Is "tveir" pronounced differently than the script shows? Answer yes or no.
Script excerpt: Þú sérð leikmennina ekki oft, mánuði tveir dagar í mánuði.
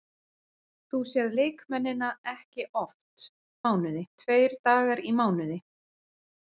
no